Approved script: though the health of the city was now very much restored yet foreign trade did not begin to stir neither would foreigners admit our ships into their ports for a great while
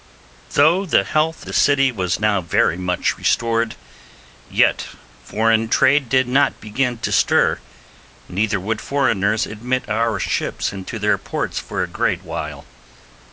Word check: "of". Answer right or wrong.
wrong